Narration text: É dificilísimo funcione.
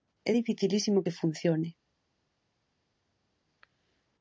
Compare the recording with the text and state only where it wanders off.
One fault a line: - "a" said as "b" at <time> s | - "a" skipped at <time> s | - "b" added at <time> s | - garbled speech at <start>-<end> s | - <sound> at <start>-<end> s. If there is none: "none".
- "que" added at 1.0 s